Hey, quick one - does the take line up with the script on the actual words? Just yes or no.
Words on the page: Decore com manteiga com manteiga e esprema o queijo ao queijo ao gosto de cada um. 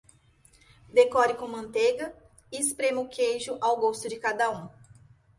no